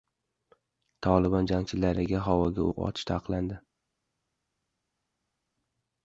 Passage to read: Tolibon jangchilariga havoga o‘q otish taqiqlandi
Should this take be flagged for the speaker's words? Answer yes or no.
no